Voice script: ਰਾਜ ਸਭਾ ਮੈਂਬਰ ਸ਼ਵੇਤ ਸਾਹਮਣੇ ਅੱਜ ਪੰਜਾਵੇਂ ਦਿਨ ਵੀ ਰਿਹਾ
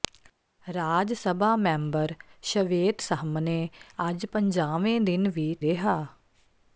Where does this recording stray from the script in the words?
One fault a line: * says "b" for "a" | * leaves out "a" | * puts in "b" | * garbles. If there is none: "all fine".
all fine